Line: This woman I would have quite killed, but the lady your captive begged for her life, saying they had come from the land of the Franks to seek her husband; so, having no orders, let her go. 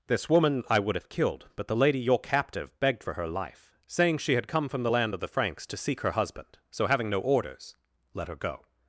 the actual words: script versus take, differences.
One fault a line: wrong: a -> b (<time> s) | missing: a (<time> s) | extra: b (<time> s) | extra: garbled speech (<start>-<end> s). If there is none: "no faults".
missing: quite (1.1 s)
wrong: they -> she (4.2 s)